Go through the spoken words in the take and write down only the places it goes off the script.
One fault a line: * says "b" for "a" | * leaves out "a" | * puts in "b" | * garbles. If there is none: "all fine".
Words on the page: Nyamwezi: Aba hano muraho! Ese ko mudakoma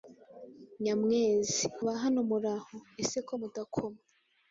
all fine